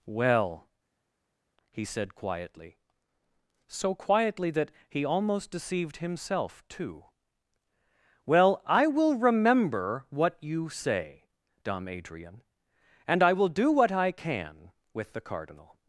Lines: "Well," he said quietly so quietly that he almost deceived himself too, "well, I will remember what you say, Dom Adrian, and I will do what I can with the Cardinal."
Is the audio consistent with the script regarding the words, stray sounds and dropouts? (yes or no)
yes